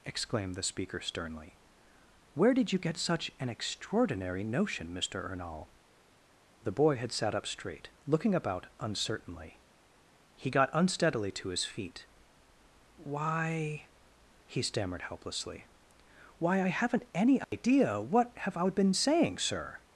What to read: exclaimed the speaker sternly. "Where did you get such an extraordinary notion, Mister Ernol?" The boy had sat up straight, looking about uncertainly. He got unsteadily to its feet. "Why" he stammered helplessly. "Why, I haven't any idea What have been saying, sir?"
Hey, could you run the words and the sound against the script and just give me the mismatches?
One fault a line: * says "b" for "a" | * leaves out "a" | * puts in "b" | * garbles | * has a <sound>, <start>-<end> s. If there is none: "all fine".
* says "his" for "its"
* has a dropout, 17.4-17.5 s
* puts in "I"